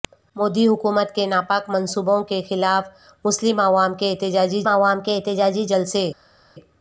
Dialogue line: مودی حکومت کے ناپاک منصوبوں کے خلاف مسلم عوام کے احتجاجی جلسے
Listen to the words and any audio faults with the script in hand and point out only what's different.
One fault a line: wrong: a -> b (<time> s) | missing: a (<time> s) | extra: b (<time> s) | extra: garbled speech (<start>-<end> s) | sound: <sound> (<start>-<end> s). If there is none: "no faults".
extra: عوام کے احتجاجی (4.7 s)